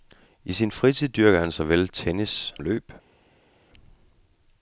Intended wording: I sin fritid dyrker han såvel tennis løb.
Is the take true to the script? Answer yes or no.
yes